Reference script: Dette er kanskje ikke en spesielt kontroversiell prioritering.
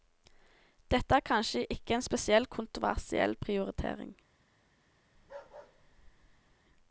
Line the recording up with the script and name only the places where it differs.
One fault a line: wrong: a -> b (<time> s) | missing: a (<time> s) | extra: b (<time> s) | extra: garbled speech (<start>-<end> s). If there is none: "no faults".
no faults